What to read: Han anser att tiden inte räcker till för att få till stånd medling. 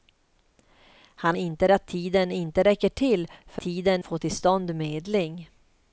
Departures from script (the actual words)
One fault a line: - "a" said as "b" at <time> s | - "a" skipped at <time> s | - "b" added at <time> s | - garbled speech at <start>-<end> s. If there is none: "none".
- "anser" said as "inte" at 1.4 s
- "att" said as "tiden" at 3.6 s